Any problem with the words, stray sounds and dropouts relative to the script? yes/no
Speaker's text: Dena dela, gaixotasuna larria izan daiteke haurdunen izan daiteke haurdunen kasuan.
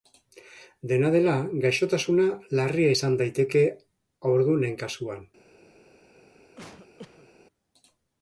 yes